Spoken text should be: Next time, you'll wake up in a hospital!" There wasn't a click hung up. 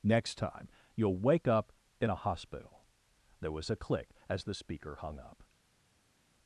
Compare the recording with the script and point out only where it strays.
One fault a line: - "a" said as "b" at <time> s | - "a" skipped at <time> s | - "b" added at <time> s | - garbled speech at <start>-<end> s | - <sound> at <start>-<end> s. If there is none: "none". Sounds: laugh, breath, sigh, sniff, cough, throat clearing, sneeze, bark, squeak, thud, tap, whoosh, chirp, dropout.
- "wasn't" said as "was" at 3.5 s
- "as the speaker" added at 4.3 s